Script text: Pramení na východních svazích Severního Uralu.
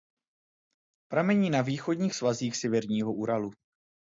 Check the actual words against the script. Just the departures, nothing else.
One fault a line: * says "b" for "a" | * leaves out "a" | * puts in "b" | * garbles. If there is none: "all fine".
all fine